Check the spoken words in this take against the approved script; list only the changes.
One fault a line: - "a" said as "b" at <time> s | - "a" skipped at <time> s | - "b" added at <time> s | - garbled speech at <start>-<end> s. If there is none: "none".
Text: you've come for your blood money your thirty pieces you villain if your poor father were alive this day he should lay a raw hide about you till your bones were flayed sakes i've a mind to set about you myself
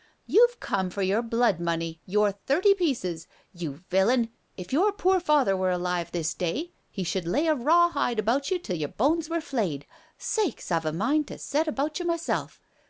none